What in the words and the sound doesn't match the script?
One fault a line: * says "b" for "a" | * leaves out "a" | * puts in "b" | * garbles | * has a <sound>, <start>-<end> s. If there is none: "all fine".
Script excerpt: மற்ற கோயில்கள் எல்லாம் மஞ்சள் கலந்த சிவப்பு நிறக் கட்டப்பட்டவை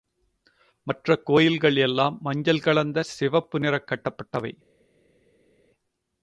all fine